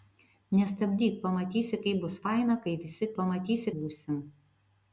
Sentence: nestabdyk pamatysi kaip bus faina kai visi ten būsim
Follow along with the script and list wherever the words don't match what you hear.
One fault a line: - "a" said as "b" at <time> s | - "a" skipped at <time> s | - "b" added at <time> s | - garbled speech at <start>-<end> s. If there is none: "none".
- "ten" said as "pamatysi" at 3.2 s